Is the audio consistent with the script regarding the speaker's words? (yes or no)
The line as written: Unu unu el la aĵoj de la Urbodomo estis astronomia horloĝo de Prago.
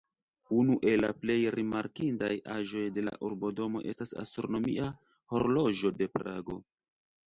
no